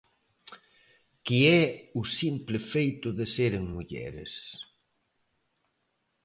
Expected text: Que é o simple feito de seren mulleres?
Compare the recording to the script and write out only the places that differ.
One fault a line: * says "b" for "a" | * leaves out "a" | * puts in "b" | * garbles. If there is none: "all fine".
all fine